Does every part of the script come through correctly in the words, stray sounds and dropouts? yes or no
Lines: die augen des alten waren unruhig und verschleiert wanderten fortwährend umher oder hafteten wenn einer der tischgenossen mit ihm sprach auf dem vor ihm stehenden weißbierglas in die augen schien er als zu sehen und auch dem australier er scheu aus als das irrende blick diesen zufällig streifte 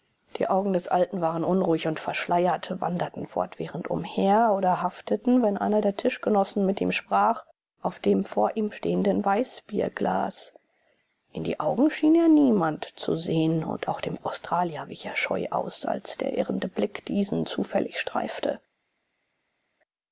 no